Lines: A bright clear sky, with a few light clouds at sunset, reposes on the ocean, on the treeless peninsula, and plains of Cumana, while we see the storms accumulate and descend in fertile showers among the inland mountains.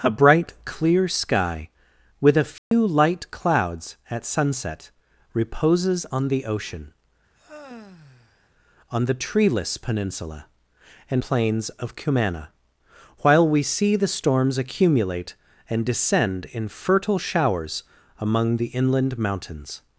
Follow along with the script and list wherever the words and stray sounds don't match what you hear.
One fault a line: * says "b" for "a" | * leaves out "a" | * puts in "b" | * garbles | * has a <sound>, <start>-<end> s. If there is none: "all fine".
* has a dropout, 2.6-2.7 s
* has a sigh, 7.3-8.5 s